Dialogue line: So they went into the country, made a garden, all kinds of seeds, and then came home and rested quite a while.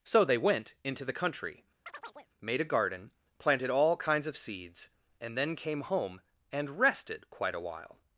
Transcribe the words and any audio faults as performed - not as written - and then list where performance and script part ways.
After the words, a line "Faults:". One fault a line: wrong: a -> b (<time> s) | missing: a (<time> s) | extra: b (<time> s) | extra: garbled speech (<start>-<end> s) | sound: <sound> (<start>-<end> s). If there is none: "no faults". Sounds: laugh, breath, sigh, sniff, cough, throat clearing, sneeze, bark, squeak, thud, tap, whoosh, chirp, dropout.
So they went into the country, made a garden, planted all kinds of seeds, and then came home and rested quite a while.
Faults:
sound: chirp (1.9-2.3 s)
extra: planted (3.4 s)